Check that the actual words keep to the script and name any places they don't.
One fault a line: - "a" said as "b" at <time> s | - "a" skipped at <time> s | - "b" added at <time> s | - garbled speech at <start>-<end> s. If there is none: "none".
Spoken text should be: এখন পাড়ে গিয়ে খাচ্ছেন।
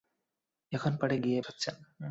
none